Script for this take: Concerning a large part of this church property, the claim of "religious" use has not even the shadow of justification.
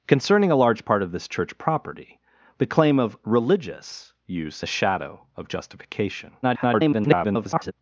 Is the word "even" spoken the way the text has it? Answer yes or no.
no